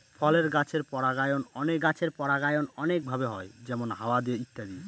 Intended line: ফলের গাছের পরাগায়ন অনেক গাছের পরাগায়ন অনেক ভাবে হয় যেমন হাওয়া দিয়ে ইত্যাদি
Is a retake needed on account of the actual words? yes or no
no